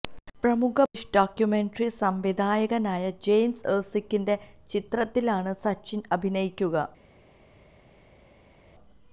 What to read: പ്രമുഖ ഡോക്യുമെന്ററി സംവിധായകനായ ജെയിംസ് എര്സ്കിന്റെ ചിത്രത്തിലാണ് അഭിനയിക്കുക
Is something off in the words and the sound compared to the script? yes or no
yes